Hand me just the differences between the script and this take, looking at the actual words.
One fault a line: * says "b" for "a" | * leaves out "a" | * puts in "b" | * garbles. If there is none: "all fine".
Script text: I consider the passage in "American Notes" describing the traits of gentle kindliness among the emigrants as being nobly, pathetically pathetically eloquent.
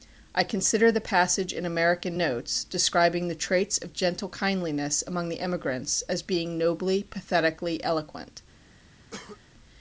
* leaves out "pathetically"